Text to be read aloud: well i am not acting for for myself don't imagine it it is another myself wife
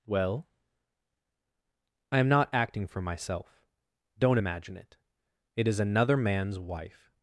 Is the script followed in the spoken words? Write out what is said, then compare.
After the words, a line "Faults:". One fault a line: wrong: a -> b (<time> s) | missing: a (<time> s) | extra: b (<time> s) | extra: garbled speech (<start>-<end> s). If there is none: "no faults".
well i am not acting for myself don't imagine it it is another man's wife
Faults:
missing: for (3.0 s)
wrong: myself -> man's (6.2 s)